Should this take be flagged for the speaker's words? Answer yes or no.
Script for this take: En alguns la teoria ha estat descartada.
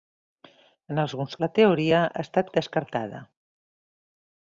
no